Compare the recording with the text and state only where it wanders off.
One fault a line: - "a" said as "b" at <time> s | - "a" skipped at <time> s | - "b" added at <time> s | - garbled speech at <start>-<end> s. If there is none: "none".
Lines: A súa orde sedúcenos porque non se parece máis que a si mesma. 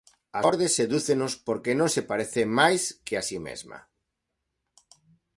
- "súa" skipped at 0.4 s